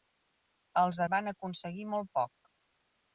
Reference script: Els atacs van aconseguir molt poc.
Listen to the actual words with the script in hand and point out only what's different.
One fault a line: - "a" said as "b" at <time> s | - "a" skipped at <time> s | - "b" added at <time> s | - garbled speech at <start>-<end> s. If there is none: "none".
- "atacs" skipped at 1.0 s